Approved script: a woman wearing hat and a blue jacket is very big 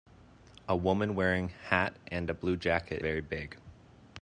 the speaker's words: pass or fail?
fail